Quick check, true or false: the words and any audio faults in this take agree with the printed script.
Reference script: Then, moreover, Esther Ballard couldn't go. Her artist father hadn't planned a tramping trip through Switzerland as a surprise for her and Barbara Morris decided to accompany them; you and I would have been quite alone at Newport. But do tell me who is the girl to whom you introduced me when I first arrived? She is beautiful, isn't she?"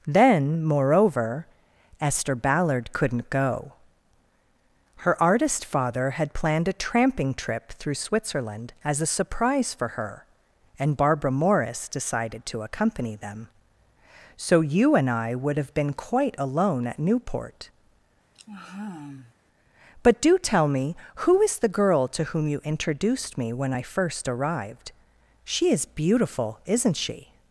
false